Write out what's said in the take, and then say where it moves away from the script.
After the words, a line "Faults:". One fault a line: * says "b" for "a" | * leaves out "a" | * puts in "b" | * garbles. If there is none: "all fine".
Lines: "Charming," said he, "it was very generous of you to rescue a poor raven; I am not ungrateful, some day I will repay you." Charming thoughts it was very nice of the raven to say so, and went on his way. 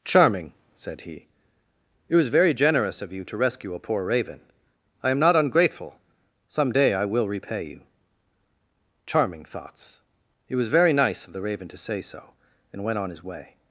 "Charming," said he, "it was very generous of you to rescue a poor raven; I am not ungrateful, some day I will repay you." Charming thoughts it was very nice of the raven to say so, and went on his way.
Faults:
all fine